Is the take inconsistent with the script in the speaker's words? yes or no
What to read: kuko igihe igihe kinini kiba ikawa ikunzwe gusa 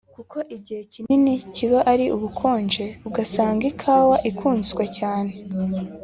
yes